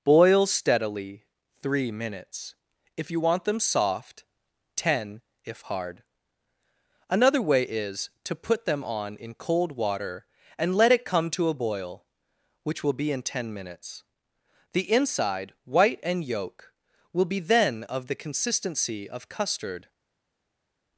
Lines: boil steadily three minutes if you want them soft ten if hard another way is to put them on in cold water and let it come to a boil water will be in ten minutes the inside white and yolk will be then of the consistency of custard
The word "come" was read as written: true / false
true